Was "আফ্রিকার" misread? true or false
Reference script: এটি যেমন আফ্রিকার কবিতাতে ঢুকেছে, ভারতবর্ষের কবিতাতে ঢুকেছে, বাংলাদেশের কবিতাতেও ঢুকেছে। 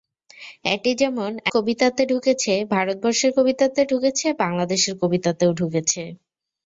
true